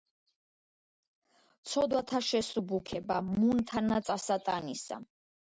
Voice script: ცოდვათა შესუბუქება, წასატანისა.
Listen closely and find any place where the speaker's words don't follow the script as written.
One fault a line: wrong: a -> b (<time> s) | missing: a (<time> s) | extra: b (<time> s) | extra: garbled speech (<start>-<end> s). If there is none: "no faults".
extra: მუნ თანა (3.3 s)